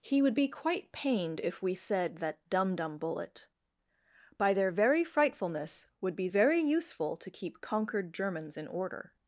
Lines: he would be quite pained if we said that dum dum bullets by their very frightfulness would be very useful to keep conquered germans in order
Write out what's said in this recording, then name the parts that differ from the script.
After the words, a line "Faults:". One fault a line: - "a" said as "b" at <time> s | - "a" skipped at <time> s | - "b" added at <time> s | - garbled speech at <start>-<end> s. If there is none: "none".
he would be quite pained if we said that dum dum bullet by their very frightfulness would be very useful to keep conquered germans in order
Faults:
- "bullets" said as "bullet" at 3.0 s